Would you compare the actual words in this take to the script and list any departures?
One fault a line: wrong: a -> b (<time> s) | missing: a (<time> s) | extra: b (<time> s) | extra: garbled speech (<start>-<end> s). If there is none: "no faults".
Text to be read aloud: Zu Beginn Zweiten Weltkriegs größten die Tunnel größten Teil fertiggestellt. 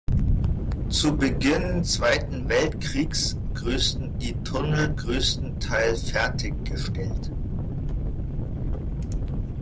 no faults